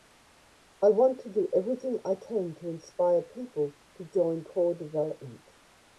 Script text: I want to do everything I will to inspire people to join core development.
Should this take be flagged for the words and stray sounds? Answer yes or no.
yes